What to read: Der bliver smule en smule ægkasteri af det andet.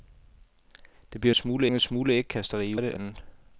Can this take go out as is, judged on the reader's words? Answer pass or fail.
pass